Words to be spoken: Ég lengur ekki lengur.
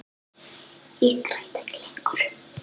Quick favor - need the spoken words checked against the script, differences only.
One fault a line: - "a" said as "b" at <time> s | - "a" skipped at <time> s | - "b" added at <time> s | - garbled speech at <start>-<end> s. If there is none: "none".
- "lengur" said as "græt" at 1.3 s